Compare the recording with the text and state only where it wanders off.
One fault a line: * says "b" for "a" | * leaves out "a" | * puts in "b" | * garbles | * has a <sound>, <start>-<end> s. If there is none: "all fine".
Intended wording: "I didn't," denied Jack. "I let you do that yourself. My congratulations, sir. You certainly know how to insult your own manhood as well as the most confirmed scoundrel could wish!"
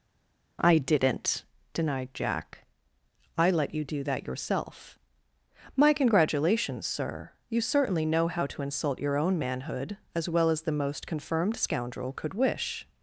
all fine